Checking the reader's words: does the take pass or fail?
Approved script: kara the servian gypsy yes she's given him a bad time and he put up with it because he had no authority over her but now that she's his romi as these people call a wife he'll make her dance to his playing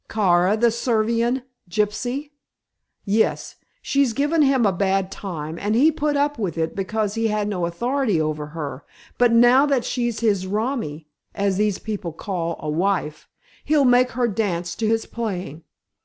pass